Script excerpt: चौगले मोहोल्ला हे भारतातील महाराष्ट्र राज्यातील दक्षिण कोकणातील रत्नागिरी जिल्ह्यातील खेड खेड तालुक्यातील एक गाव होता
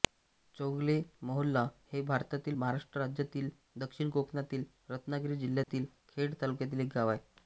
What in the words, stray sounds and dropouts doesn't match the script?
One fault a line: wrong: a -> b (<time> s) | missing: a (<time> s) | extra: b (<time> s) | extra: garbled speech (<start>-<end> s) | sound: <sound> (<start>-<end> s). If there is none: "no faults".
sound: dropout (5.6-5.7 s)
missing: खेड (6.4 s)
wrong: होता -> आहे (7.1 s)